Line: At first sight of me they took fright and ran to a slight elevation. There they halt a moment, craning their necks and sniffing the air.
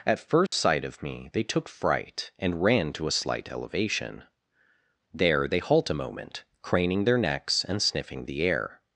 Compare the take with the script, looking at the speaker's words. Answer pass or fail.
pass